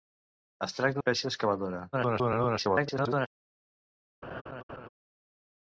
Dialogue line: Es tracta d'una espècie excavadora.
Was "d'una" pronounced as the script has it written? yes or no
no